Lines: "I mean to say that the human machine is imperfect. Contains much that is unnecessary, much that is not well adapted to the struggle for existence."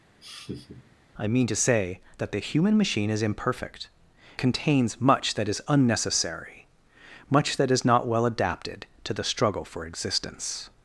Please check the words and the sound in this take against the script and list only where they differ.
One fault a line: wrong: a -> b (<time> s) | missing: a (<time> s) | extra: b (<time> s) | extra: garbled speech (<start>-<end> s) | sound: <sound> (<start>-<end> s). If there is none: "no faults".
sound: laugh (0.2-1.0 s)